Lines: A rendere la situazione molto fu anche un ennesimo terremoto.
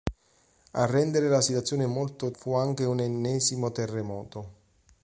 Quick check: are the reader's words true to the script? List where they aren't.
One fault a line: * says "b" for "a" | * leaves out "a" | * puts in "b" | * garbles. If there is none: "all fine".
all fine